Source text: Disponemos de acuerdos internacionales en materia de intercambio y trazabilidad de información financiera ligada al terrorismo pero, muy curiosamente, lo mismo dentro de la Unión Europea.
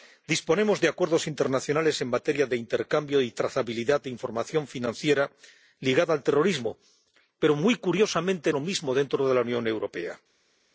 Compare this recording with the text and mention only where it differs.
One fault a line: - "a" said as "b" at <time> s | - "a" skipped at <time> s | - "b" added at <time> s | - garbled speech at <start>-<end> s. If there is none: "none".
none